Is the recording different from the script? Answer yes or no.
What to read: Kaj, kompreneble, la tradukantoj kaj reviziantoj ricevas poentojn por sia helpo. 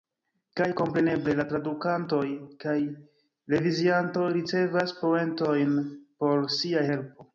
no